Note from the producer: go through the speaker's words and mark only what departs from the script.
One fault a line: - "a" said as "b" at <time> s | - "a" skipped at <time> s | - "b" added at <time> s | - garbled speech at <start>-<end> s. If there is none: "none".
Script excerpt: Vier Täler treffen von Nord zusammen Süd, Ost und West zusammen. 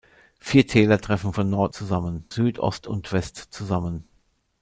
none